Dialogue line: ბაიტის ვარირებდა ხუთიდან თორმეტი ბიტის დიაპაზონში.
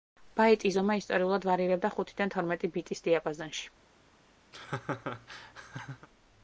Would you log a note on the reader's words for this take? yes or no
yes